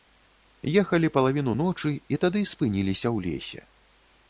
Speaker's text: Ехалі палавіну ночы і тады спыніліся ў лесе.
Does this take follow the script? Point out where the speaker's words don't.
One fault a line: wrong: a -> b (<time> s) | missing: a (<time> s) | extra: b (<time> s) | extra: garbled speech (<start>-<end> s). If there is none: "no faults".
no faults